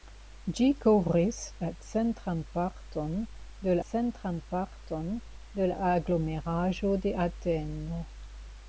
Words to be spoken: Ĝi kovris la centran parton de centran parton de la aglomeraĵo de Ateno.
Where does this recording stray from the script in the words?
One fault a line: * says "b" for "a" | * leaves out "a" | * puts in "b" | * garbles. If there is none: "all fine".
all fine